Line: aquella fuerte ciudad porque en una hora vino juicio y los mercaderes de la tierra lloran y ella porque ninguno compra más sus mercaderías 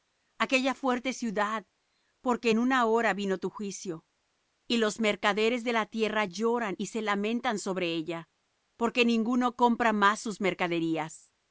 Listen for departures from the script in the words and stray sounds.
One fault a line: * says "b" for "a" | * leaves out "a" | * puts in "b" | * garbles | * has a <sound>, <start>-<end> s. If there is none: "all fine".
* puts in "tu"
* puts in "se lamentan sobre"